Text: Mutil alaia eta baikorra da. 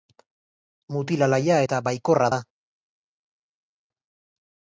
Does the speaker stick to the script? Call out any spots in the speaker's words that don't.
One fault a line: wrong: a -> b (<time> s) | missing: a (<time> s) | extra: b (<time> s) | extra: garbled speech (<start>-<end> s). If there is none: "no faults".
no faults